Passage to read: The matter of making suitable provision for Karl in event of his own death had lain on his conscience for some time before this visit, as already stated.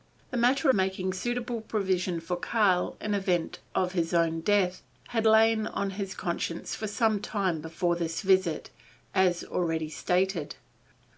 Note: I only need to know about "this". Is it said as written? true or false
true